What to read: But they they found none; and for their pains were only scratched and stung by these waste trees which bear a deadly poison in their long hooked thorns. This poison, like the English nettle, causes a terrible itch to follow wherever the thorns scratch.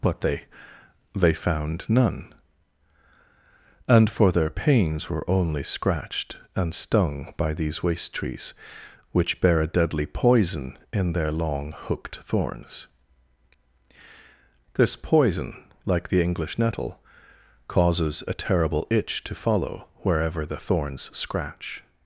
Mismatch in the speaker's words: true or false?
false